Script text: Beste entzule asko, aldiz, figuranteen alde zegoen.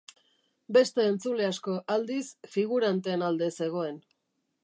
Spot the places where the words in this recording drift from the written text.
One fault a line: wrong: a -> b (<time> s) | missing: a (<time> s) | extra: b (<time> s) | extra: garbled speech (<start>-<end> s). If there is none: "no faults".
no faults